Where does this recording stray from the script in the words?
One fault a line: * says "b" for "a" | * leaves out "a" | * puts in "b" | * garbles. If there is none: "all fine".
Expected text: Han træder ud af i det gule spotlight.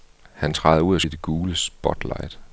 all fine